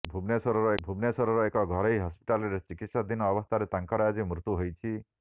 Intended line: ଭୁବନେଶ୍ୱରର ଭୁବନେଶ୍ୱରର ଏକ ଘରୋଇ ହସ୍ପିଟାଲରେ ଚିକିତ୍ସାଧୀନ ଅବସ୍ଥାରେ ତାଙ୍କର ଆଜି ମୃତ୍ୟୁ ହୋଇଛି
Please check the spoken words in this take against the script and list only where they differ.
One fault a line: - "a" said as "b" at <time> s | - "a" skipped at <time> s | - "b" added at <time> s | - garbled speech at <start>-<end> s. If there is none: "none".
none